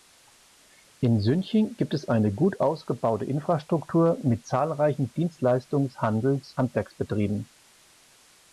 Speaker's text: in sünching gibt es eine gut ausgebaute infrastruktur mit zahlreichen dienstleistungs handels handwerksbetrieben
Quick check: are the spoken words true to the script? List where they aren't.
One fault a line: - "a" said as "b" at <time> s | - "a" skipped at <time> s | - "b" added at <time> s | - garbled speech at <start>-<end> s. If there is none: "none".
none